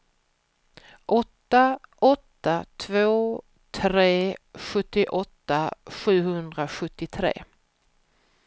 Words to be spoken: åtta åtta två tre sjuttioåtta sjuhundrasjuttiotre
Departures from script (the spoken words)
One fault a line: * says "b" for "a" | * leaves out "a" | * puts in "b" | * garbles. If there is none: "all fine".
all fine